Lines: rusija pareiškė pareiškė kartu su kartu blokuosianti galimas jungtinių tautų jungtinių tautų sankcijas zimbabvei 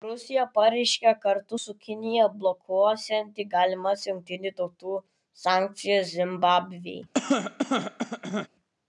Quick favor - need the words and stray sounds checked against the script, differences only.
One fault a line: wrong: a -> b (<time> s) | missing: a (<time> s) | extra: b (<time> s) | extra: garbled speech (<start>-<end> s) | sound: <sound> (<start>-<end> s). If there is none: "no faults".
missing: pareiškė (1.1 s)
wrong: kartu -> kinija (1.9 s)
missing: jungtinių tautų (5.0 s)
sound: cough (7.1-8.5 s)